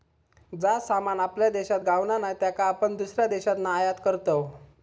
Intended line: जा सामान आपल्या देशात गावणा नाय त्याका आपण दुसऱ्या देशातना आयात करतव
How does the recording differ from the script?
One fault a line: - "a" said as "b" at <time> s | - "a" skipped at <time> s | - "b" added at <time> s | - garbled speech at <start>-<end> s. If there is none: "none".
none